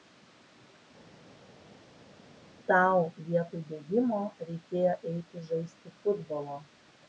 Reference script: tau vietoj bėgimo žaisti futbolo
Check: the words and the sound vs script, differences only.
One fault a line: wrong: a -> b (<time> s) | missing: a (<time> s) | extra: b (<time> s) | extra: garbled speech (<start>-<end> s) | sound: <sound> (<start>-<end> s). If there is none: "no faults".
extra: reikėjo eiti (4.5 s)